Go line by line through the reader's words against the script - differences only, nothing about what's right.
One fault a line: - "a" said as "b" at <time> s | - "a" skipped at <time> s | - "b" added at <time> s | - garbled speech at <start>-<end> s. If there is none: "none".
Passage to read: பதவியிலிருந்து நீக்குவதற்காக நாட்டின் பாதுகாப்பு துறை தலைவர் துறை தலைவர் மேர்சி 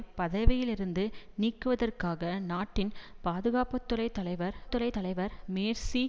none